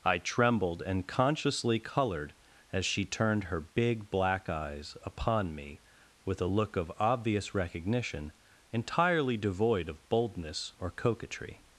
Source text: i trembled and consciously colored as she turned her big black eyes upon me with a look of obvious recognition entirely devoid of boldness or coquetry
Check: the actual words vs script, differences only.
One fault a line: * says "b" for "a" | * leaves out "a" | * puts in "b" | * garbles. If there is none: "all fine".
all fine